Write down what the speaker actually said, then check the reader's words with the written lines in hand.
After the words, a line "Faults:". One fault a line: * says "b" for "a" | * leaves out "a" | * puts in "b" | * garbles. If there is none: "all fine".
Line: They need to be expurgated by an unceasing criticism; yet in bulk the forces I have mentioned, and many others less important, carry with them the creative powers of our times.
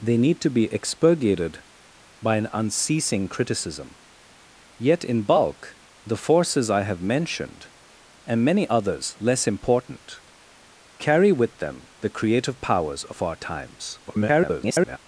They need to be expurgated by an unceasing criticism; yet in bulk the forces I have mentioned, and many others less important, carry with them the creative powers of our times. [garbled]
Faults:
* garbles